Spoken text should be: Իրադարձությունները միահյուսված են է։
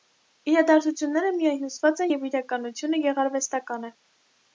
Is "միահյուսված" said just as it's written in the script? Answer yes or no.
yes